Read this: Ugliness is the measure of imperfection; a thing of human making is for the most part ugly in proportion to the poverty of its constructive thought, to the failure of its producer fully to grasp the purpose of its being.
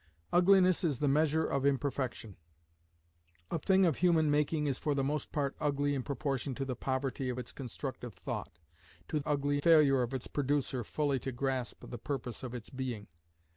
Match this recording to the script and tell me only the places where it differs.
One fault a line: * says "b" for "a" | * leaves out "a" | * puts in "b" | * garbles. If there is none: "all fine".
* says "ugly" for "the"